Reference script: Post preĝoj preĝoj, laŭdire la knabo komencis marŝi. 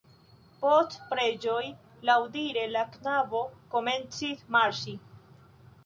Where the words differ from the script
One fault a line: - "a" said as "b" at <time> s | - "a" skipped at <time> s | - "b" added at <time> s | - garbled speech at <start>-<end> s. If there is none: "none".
- "preĝoj" skipped at 1.7 s